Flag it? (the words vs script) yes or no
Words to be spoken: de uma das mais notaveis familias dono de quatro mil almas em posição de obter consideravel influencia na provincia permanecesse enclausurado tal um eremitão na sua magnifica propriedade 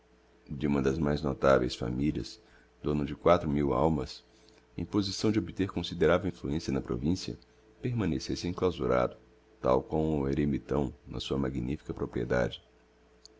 yes